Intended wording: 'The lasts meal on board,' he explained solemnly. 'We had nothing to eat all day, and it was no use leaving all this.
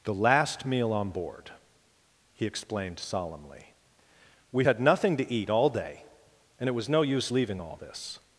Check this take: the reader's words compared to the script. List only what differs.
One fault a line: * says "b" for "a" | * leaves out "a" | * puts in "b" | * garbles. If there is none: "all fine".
* says "last" for "lasts"